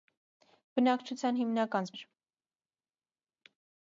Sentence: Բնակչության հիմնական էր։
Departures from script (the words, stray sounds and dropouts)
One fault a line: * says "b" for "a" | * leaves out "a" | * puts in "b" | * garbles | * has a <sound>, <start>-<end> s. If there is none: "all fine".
all fine